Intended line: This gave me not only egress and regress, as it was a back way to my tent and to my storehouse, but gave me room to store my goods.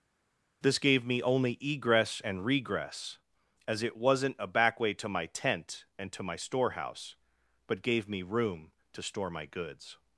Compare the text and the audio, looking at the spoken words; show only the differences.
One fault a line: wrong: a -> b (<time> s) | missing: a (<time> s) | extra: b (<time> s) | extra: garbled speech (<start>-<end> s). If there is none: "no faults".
missing: not (1.2 s)
wrong: was -> wasn't (4.0 s)